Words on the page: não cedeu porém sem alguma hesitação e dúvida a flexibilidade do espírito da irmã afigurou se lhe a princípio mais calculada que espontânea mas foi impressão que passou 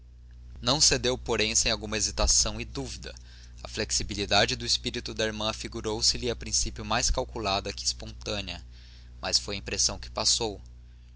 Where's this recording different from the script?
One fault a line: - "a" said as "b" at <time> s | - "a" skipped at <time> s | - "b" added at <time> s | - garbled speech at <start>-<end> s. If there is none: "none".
none